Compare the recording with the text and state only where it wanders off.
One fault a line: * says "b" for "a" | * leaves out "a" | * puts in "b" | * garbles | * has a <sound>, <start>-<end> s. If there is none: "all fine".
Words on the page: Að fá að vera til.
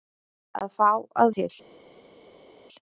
* leaves out "vera"